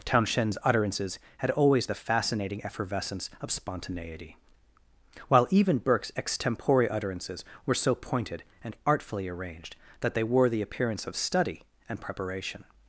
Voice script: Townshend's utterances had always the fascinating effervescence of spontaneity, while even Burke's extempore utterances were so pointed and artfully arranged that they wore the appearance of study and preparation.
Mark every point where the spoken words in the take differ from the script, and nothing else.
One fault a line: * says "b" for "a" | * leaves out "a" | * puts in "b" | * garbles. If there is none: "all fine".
all fine